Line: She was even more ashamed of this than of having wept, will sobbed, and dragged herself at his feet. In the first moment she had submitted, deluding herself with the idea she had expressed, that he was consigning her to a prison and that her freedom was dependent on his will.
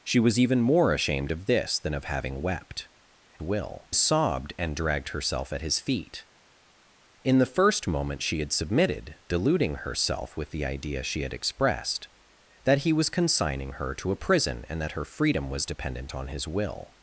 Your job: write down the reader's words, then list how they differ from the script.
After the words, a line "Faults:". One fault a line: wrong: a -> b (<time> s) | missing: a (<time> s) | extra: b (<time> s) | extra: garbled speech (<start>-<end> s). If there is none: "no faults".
She was even more ashamed of this than of having wept, will sobbed, and dragged herself at his feet. In the first moment she had submitted, deluding herself with the idea she had expressed, that he was consigning her to a prison and that her freedom was dependent on his will.
Faults:
no faults